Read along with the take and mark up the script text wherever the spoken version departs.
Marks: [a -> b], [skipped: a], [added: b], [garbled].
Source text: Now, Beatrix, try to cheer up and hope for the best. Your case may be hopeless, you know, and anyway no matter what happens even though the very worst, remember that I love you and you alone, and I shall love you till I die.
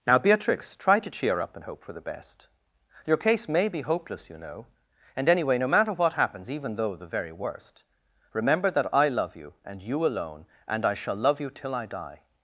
Now, Beatrix, try to cheer up and hope for the best. Your case may be hopeless, you know, and anyway no matter what happens even though the very worst, remember that I love you and you alone, and I shall love you till I die.